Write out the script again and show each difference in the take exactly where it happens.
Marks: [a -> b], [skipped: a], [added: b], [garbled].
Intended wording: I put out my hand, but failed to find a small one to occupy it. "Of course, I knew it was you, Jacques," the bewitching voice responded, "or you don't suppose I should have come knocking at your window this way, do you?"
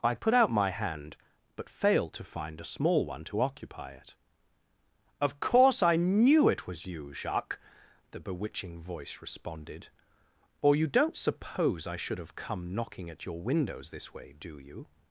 I put out my hand, but failed to find a small one to occupy it. "Of course, I knew it was you, Jacques," the bewitching voice responded, "or you don't suppose I should have come knocking at your [window -> windows] this way, do you?"